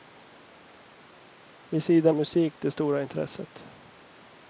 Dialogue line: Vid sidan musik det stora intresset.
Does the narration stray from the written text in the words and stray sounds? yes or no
no